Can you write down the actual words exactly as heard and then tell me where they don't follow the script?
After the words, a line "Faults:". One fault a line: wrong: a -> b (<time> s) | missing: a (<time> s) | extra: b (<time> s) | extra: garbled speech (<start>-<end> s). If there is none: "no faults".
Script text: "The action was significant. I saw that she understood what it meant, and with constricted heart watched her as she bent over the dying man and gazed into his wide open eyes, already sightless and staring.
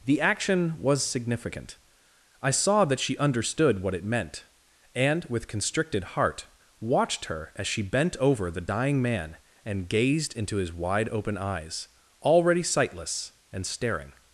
"The action was significant. I saw that she understood what it meant, and with constricted heart watched her as she bent over the dying man and gazed into his wide open eyes, already sightless and staring.
Faults:
no faults